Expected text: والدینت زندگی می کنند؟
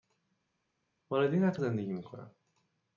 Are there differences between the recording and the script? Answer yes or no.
no